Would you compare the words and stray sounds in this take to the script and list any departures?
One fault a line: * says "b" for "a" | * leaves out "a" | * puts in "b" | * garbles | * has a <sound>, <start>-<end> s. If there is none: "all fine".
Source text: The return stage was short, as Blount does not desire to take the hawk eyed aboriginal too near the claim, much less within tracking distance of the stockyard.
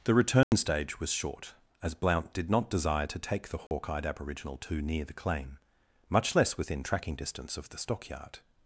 * has a dropout, 0.4-0.5 s
* says "did" for "does"
* has a dropout, 3.7-3.7 s